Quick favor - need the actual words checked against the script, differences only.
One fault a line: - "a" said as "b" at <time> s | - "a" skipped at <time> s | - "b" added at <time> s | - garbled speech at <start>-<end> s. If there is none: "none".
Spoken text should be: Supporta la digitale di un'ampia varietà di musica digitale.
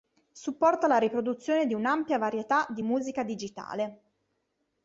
- "digitale" said as "riproduzione" at 1.0 s